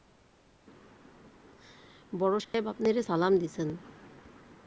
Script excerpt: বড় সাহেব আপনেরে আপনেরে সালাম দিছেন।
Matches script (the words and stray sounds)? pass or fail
fail